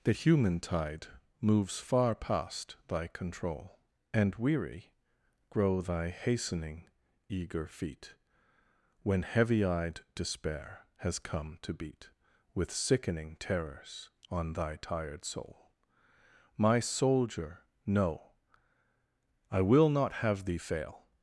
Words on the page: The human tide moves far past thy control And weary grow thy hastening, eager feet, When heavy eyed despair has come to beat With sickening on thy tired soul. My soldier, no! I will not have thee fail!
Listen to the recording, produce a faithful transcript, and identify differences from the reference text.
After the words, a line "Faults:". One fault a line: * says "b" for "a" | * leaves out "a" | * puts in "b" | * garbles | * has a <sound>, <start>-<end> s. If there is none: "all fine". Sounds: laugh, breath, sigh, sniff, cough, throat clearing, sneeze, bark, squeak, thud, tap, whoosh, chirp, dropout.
The human tide moves far past thy control And weary grow thy hastening, eager feet, When heavy eyed despair has come to beat With sickening terrors on thy tired soul. My soldier, no! I will not have thee fail!
Faults:
* puts in "terrors"